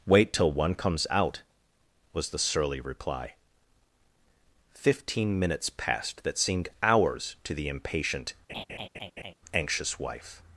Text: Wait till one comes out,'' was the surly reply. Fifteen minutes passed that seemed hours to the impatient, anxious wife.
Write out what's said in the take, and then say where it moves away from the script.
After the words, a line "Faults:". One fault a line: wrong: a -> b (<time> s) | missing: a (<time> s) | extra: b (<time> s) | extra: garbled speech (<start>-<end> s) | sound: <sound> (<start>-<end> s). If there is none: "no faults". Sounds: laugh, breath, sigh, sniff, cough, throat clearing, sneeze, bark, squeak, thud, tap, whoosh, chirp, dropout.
Wait till one comes out,'' was the surly reply. Fifteen minutes passed that seemed hours to the impatient, anxious wife.
Faults:
sound: laugh (8.5-9.3 s)